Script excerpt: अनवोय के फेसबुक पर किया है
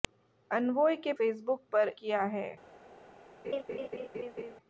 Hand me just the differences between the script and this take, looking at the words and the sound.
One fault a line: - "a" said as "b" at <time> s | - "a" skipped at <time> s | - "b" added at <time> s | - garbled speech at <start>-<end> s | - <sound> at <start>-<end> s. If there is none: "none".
- laugh at 3.4-4.6 s